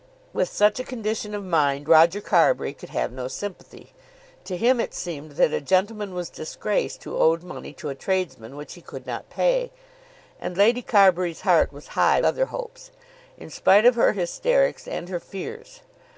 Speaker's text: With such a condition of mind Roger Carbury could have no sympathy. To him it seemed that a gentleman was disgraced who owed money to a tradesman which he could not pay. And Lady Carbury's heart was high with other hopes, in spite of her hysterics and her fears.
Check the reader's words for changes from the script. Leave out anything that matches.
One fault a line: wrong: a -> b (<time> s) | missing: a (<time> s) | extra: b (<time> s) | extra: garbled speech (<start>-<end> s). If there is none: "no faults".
missing: with (12.2 s)